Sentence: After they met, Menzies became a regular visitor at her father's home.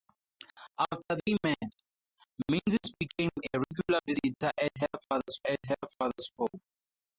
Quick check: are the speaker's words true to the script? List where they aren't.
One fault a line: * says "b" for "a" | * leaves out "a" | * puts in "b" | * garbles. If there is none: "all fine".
* puts in "at her father's"